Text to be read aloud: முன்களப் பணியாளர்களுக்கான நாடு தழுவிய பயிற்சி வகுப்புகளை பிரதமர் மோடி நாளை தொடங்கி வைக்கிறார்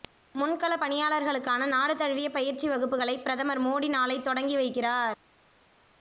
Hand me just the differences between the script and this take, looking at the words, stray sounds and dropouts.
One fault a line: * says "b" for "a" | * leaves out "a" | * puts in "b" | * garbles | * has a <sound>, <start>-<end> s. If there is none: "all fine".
all fine